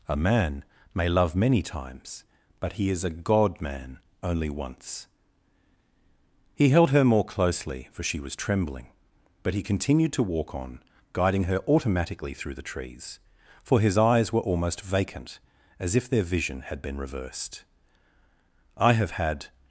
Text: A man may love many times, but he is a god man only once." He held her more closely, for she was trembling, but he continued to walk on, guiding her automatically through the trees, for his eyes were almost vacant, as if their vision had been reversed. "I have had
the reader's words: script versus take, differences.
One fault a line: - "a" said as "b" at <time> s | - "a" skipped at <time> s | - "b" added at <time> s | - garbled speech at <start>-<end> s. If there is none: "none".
none